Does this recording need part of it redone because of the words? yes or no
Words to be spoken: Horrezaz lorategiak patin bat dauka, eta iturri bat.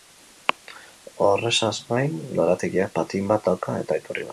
yes